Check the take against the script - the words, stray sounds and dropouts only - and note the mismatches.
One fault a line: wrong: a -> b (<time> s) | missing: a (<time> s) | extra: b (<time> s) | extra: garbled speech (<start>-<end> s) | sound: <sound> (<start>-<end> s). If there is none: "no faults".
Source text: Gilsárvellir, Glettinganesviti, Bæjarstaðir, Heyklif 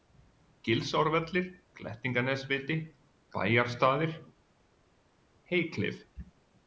no faults